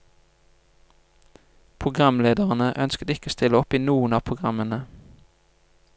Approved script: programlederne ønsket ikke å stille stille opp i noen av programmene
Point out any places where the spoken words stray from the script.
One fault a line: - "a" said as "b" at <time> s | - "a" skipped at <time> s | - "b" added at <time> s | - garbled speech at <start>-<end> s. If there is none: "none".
- "stille" skipped at 3.6 s